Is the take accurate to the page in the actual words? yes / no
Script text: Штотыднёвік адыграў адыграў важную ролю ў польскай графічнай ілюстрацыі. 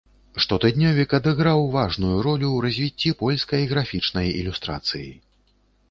no